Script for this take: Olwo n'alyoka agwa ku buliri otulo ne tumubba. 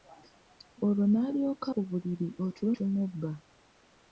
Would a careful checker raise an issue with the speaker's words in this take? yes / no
yes